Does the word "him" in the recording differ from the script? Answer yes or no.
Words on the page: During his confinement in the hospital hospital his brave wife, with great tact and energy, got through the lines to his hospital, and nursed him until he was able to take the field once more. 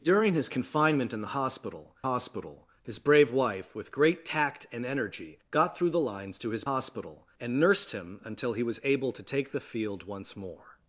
no